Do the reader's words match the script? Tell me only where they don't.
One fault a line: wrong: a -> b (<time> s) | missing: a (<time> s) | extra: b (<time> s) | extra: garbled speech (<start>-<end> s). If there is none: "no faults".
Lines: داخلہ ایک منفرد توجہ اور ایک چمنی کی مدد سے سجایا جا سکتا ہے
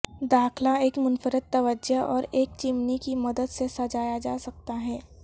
no faults